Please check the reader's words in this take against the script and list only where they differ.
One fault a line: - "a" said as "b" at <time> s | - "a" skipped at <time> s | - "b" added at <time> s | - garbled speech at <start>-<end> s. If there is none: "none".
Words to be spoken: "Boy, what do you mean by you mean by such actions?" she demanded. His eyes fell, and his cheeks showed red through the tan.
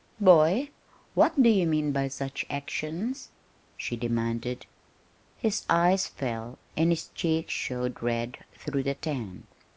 - "you mean by" skipped at 2.1 s